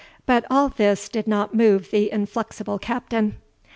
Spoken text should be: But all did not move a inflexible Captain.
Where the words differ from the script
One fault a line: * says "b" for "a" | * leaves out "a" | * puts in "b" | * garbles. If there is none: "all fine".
* puts in "this"
* says "the" for "a"